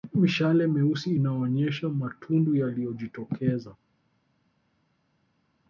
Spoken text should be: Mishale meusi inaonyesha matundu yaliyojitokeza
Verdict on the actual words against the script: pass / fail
pass